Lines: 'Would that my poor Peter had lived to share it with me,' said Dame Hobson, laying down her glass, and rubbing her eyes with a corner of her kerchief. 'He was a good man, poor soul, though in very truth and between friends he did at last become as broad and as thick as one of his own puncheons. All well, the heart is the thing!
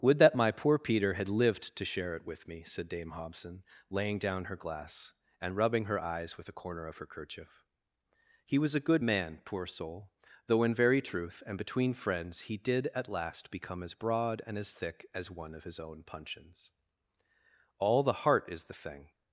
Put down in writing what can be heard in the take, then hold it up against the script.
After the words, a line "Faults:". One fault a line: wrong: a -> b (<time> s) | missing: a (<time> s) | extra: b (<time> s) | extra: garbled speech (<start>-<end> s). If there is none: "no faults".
'Would that my poor Peter had lived to share it with me,' said Dame Hobson, laying down her glass, and rubbing her eyes with a corner of her kerchief. 'He was a good man, poor soul, though in very truth and between friends he did at last become as broad and as thick as one of his own puncheons. All the heart is the thing!
Faults:
missing: well (18.0 s)